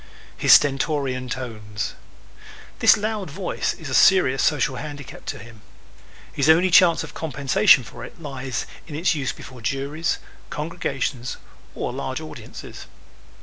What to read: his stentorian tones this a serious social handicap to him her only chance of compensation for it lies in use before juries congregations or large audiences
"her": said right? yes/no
no